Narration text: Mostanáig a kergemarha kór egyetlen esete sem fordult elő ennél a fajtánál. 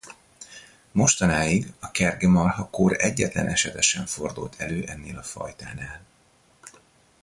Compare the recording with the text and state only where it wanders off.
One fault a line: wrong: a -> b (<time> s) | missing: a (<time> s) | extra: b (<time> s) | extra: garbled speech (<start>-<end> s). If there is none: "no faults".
no faults